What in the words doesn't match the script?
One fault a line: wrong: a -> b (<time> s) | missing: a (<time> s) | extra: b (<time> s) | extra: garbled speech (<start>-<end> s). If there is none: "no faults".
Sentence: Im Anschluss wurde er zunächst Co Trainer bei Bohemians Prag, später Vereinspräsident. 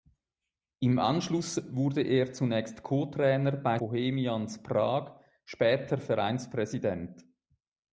no faults